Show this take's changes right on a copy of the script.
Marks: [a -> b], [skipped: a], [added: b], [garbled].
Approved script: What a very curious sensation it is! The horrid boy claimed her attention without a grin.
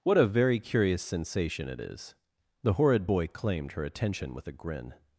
What a very curious sensation it is! The horrid boy claimed her attention [without -> with] a grin.